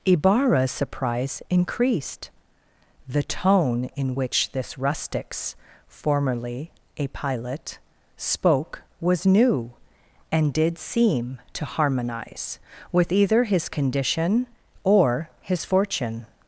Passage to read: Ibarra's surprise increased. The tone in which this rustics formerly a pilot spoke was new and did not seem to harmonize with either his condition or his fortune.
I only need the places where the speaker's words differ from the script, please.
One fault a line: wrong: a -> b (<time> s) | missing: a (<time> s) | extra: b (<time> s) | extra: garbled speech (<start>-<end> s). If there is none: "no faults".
missing: not (10.8 s)